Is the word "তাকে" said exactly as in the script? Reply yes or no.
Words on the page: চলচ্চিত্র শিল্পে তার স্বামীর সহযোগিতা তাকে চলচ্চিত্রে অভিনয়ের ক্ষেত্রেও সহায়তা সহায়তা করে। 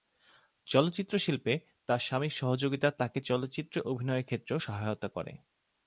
yes